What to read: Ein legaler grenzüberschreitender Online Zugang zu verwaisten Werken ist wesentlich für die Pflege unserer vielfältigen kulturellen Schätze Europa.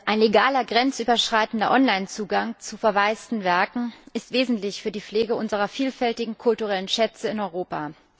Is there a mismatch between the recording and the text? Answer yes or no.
yes